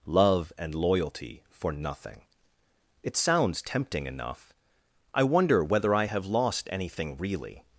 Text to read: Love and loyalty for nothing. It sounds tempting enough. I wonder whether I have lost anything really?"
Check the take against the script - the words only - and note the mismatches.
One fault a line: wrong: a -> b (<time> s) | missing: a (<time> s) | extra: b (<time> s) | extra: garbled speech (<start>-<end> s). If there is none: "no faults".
no faults